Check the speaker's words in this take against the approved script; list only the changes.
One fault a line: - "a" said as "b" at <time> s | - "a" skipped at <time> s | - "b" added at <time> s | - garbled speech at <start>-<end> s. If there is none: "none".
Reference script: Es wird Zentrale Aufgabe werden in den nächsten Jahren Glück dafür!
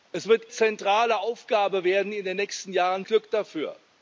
none